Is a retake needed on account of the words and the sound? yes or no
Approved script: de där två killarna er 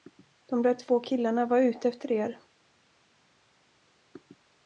yes